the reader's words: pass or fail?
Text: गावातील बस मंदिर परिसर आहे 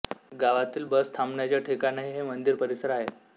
fail